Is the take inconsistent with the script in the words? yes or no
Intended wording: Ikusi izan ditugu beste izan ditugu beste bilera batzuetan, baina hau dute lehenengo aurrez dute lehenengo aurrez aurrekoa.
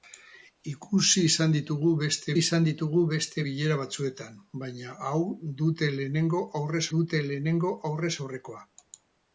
no